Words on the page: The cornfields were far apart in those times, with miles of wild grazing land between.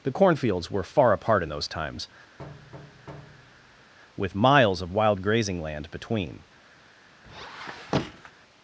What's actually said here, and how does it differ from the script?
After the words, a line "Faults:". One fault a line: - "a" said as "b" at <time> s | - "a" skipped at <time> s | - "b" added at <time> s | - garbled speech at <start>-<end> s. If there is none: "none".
The cornfields were far apart in those times, with miles of wild grazing land between.
Faults:
none